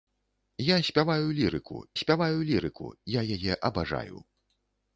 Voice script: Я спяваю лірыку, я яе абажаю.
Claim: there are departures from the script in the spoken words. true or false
true